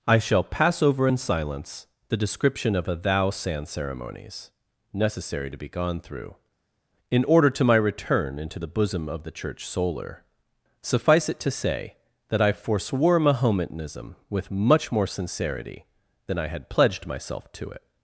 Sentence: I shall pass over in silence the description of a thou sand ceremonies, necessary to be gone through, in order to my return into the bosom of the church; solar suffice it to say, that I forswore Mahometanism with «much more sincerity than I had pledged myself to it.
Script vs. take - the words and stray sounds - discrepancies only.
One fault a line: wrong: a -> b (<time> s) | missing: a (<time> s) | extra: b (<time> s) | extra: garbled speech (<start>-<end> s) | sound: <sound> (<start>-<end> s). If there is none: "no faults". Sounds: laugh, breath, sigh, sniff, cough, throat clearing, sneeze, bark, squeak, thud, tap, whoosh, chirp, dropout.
no faults